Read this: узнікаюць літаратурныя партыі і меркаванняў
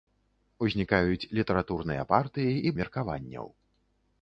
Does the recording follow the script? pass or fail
pass